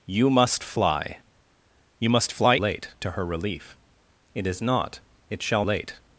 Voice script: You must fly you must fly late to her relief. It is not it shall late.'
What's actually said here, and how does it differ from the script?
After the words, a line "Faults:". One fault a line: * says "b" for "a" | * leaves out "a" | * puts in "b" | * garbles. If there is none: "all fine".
You must fly you must fly late to her relief. It is not it shall late.'
Faults:
all fine